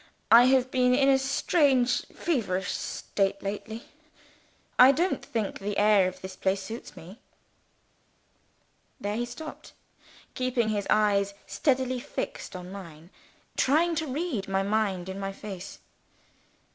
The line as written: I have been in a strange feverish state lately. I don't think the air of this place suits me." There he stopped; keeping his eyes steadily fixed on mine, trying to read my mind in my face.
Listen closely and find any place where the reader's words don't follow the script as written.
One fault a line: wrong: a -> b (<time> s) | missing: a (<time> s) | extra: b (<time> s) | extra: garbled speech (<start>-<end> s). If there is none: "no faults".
no faults